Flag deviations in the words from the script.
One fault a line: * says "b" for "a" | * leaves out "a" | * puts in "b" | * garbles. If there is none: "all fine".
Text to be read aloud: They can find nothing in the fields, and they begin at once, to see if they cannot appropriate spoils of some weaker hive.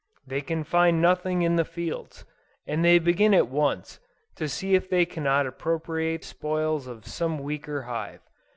all fine